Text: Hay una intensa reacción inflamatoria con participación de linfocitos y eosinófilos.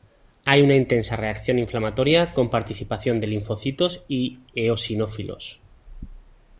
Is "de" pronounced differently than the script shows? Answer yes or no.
no